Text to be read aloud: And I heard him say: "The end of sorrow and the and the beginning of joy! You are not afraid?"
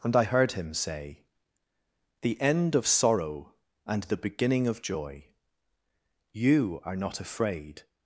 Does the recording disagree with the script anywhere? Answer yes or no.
yes